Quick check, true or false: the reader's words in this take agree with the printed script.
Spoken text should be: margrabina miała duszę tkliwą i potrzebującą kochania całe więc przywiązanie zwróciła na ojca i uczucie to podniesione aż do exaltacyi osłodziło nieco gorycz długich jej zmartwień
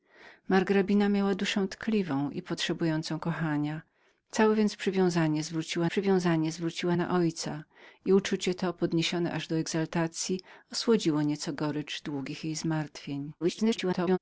false